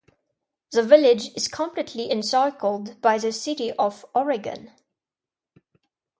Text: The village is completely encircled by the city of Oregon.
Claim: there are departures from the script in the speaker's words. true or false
false